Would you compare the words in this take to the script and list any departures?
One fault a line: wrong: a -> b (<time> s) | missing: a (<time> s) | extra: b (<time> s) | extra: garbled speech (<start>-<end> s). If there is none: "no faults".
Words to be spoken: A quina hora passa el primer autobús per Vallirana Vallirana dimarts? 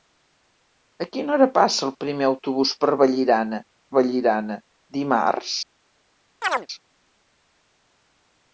no faults